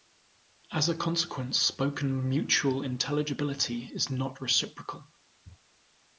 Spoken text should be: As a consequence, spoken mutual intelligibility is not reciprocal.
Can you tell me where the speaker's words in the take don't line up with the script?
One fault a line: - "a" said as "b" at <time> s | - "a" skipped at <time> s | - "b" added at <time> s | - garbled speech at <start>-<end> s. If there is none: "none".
none